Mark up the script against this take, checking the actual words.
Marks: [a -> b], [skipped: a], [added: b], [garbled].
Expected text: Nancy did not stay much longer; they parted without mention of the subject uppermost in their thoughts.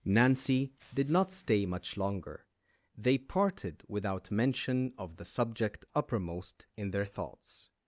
Nancy did not stay much longer; they parted without mention of the subject uppermost in their thoughts.